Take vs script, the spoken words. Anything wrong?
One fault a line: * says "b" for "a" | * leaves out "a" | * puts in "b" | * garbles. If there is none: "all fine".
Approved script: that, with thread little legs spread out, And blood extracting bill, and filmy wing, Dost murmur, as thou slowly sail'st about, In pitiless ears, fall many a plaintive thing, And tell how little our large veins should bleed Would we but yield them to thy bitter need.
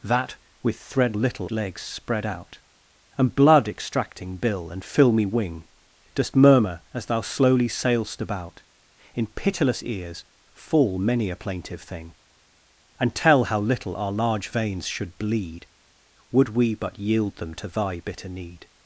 all fine